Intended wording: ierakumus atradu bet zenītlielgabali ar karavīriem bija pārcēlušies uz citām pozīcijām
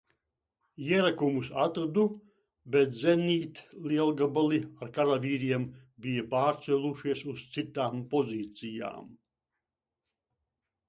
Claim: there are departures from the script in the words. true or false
false